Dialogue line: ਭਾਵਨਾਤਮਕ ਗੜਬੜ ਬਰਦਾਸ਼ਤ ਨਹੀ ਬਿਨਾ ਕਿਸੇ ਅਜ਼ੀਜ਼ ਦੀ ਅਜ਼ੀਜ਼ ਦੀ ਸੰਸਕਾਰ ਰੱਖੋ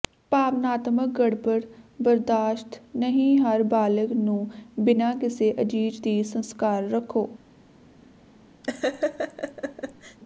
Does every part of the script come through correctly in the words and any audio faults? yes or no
no